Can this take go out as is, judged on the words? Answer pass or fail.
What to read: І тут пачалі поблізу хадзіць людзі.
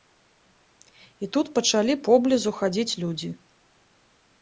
pass